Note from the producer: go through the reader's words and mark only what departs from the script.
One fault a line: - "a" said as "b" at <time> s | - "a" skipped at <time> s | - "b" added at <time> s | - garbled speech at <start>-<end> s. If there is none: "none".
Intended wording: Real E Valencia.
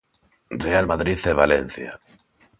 - "Madrid" added at 0.8 s